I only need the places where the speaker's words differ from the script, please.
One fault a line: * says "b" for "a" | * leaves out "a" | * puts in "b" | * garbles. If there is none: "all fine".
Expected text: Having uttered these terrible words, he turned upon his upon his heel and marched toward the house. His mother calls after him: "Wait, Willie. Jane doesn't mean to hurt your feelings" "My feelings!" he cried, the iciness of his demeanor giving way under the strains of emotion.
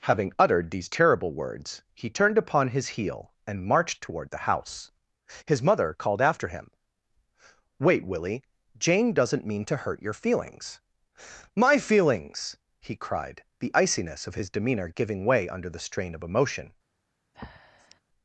* leaves out "upon his"
* says "called" for "calls"
* says "strain" for "strains"